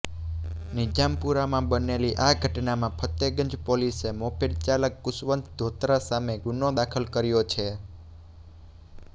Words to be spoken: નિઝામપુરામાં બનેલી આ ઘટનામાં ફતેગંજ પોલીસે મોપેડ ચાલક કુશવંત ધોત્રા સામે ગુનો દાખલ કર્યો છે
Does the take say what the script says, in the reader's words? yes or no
yes